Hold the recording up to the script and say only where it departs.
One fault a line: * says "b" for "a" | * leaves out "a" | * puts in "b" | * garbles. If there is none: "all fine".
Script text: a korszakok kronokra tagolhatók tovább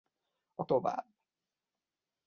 * leaves out "korszakok kronokra tagolhatók"